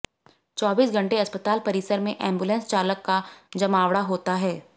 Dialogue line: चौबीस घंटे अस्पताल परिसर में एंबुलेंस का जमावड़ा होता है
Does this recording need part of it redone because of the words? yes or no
yes